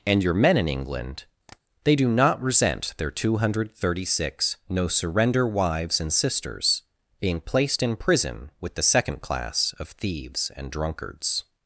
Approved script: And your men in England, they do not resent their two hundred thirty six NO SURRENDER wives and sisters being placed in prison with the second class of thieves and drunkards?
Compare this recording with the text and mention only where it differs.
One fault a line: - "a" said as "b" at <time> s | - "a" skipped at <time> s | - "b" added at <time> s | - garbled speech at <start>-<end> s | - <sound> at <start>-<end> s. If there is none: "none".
- tap at 1.5-1.6 s